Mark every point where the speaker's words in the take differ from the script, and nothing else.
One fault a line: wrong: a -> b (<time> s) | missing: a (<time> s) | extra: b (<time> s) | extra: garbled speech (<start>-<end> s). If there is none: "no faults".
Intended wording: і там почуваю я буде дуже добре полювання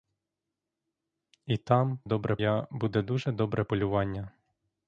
wrong: почуваю -> добре (2.0 s)